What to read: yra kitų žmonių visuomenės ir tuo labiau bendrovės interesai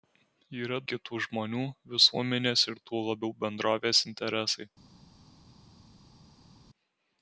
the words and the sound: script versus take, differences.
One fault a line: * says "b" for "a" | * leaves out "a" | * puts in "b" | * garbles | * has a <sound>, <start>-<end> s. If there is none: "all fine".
all fine